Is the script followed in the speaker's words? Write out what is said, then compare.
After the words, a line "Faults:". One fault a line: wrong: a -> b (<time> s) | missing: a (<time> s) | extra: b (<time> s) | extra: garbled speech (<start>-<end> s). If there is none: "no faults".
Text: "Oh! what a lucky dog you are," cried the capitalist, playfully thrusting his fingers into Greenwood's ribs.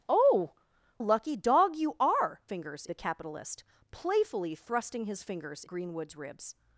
"Oh! a lucky dog you are," fingers the capitalist, playfully thrusting his fingers Greenwood's ribs.
Faults:
missing: what (0.5 s)
wrong: cried -> fingers (2.5 s)
missing: into (5.6 s)